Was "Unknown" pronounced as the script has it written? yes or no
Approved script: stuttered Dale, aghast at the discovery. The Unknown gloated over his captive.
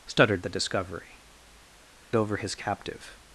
no